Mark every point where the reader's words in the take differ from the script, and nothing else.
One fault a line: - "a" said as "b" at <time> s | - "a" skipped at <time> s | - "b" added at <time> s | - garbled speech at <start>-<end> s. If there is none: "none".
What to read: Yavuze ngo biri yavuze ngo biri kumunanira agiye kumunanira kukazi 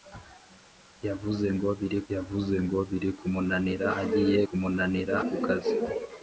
none